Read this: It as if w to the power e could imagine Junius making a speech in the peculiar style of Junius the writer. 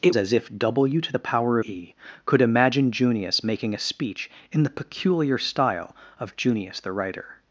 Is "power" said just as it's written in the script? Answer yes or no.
yes